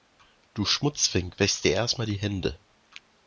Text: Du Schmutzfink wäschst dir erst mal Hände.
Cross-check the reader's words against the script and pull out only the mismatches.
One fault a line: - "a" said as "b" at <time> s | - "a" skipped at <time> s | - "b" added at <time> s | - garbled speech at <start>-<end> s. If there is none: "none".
- "die" added at 2.1 s